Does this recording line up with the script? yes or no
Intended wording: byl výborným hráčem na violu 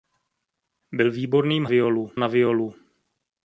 no